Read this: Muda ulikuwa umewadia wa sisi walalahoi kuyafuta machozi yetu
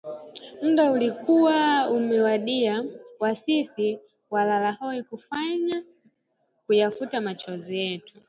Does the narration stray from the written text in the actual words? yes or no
no